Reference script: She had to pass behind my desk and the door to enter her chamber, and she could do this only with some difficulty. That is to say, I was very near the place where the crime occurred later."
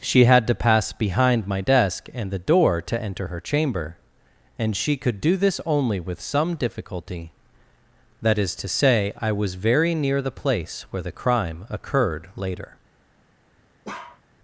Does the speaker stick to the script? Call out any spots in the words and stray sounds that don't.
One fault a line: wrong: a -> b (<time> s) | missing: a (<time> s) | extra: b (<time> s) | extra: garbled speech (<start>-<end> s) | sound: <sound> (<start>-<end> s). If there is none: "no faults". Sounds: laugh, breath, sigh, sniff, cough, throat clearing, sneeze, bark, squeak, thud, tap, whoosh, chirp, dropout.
sound: bark (13.8-14.2 s)